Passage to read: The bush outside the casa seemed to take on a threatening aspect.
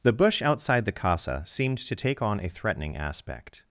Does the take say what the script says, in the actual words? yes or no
yes